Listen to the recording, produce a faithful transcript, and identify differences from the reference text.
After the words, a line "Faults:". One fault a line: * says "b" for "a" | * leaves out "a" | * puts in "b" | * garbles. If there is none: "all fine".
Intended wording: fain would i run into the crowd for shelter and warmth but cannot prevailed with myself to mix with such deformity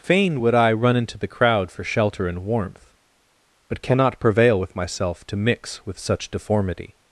fain would i run into the crowd for shelter and warmth but cannot prevail with myself to mix with such deformity
Faults:
* says "prevail" for "prevailed"